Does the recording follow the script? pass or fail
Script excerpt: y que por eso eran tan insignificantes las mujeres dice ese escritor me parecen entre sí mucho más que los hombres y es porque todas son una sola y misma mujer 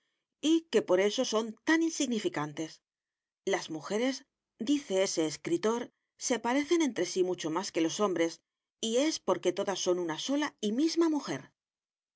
fail